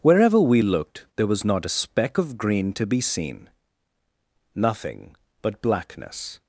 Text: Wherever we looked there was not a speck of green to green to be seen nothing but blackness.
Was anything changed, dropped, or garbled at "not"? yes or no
no